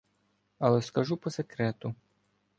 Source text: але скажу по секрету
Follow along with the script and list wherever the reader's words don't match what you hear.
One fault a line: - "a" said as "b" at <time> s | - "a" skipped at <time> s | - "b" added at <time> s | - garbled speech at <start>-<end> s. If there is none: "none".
none